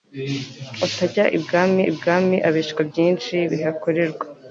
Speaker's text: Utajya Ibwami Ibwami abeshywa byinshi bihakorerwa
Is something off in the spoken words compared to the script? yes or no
no